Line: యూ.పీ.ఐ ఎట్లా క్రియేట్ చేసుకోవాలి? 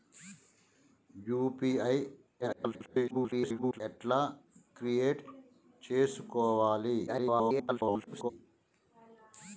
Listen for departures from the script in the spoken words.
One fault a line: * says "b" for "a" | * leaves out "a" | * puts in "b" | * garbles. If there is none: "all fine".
* garbles
* garbles